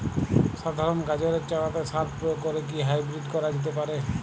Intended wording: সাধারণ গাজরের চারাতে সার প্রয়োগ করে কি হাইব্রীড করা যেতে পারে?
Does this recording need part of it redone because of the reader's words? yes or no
no